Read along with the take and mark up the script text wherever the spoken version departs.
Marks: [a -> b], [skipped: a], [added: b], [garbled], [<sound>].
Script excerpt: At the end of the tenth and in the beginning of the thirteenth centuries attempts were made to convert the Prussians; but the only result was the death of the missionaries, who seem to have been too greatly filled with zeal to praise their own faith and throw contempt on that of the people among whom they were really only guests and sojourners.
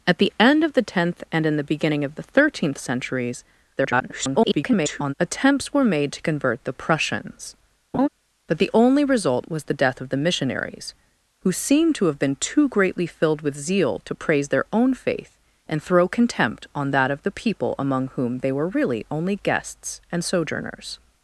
At the end of the tenth and in the beginning of the thirteenth centuries [garbled] attempts were made to convert the Prussians; [laugh] but the only result was the death of the missionaries, who seem to have been too greatly filled with zeal to praise their own faith and throw contempt on that of the people among whom they were really only guests and sojourners.